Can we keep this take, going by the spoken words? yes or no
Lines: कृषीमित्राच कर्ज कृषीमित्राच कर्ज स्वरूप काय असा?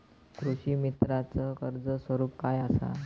no